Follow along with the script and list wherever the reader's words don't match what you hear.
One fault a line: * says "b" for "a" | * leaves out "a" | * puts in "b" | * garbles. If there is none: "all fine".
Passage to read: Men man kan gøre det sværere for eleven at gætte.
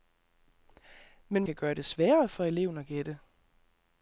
* leaves out "man"